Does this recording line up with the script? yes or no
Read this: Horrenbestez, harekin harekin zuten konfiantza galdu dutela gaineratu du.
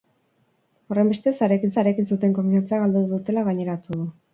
yes